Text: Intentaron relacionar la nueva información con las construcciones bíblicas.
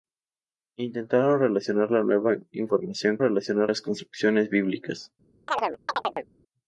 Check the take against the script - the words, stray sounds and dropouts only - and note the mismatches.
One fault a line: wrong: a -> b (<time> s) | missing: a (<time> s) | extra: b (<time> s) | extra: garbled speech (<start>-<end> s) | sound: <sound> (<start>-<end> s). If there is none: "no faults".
wrong: con -> relacionar (3.2 s)
sound: chirp (5.5-6.3 s)